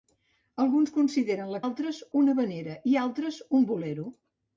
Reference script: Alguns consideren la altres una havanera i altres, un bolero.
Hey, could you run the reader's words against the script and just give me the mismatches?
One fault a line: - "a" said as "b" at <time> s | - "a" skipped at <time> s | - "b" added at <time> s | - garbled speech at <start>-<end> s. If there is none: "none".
none